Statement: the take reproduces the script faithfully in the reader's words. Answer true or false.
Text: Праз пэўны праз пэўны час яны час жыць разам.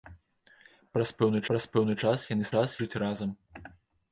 true